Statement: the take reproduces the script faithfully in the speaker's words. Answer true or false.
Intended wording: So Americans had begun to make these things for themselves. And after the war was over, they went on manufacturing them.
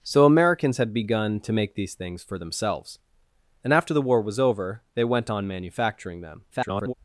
false